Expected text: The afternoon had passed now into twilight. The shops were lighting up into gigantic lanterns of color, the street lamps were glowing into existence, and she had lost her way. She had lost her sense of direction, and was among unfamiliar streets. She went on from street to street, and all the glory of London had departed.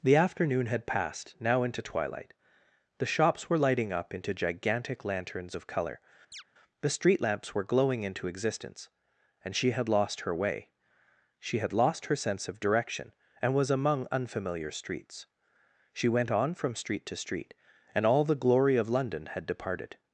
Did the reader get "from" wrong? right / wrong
right